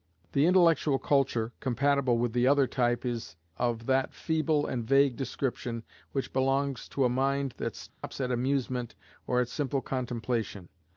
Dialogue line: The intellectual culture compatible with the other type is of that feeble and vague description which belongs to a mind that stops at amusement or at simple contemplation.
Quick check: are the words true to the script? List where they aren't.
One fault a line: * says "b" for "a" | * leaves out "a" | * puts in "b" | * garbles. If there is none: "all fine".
all fine